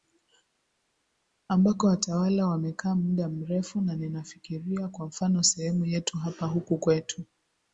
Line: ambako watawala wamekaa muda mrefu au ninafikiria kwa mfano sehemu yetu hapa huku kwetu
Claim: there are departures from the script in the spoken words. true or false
true